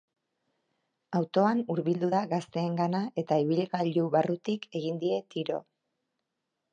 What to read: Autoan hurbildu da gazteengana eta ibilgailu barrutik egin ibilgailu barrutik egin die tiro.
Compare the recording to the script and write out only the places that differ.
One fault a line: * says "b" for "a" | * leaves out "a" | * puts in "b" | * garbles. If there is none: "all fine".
* leaves out "ibilgailu barrutik egin"